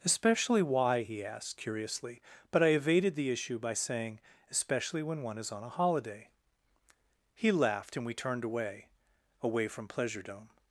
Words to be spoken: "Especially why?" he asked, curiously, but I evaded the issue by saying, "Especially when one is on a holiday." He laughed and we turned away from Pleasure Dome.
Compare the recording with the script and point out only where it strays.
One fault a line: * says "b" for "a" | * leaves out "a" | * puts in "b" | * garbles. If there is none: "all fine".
* puts in "away"